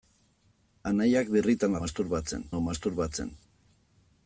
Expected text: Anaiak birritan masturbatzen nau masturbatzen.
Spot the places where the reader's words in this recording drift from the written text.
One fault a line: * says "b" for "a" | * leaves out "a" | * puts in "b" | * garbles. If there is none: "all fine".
all fine